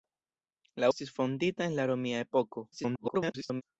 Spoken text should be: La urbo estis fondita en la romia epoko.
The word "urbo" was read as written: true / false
false